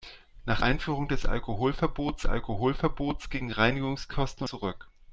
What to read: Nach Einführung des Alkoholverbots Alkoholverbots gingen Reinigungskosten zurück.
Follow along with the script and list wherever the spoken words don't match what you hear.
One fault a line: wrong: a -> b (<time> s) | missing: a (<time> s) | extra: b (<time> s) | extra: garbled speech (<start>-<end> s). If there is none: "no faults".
no faults